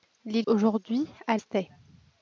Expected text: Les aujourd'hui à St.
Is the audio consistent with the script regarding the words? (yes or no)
yes